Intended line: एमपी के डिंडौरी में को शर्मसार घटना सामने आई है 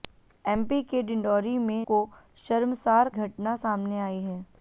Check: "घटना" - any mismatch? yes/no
no